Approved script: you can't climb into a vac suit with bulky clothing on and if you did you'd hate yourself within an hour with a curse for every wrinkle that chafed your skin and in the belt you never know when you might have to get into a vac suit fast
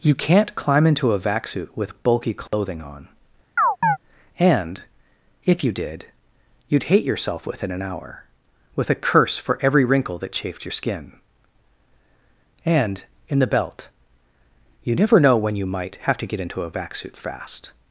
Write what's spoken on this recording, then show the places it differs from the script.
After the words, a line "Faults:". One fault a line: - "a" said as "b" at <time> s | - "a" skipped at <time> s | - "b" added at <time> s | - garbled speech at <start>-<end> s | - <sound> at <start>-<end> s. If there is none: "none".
you can't climb into a vac suit with bulky clothing on and if you did you'd hate yourself within an hour with a curse for every wrinkle that chafed your skin and in the belt you never know when you might have to get into a vac suit fast
Faults:
- dropout at 2.5-2.5 s
- chirp at 3.6-4.0 s